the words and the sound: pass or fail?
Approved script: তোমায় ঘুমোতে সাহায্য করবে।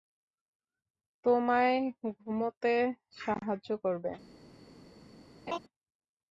fail